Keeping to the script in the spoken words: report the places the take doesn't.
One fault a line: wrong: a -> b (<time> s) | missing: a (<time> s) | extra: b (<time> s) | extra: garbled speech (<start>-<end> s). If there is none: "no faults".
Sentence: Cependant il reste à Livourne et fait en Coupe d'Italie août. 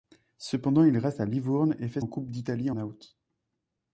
no faults